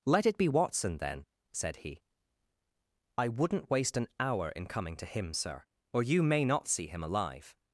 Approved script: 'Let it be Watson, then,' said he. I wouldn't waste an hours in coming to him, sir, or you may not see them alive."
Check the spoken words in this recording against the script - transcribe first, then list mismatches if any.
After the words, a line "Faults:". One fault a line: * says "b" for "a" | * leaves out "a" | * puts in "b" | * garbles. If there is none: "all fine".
'Let it be Watson, then,' said he. I wouldn't waste an hour in coming to him, sir, or you may not see him alive."
Faults:
* says "hour" for "hours"
* says "him" for "them"